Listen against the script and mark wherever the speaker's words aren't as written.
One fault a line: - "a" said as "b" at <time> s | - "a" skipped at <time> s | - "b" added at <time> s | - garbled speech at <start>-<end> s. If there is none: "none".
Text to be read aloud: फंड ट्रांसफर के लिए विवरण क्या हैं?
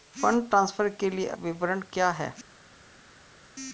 none